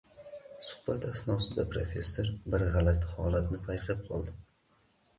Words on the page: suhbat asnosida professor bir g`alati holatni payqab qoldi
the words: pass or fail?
pass